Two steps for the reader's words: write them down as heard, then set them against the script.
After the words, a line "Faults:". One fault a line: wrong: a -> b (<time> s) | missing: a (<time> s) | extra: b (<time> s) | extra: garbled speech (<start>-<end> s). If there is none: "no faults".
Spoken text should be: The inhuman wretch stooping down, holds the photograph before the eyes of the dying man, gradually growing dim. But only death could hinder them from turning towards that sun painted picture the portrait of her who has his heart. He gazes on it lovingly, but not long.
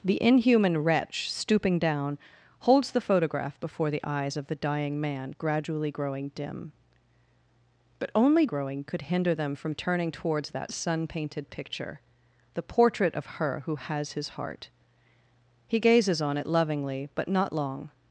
The inhuman wretch stooping down, holds the photograph before the eyes of the dying man, gradually growing dim. But only growing could hinder them from turning towards that sun painted picture the portrait of her who has his heart. He gazes on it lovingly, but not long.
Faults:
wrong: death -> growing (8.4 s)